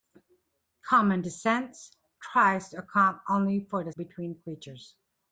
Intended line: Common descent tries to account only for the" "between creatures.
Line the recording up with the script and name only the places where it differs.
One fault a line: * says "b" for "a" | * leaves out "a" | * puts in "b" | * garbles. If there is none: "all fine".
all fine